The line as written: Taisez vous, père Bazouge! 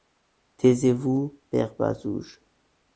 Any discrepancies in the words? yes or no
no